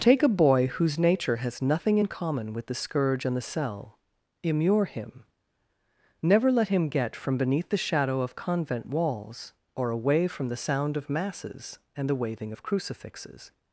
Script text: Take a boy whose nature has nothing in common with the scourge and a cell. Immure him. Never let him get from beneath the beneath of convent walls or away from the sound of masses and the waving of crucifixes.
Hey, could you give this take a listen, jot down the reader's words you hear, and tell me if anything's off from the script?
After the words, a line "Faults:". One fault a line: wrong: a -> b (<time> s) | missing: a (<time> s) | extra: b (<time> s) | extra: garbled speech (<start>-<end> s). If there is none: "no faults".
Take a boy whose nature has nothing in common with the scourge and the cell. Immure him. Never let him get from beneath the shadow of convent walls or away from the sound of masses and the waving of crucifixes.
Faults:
wrong: a -> the (3.3 s)
wrong: beneath -> shadow (7.8 s)